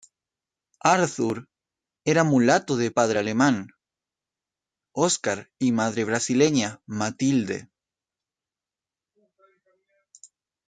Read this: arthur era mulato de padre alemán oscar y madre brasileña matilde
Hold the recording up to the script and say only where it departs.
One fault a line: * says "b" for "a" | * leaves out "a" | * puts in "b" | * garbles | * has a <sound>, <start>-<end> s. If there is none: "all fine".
all fine